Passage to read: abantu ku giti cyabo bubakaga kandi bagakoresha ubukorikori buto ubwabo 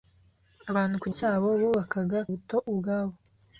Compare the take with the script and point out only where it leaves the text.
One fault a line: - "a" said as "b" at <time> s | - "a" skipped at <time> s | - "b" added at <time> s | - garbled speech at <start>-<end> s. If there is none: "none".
- "giti" skipped at 1.1 s
- "kandi bagakoresha ubukorikori" skipped at 2.2 s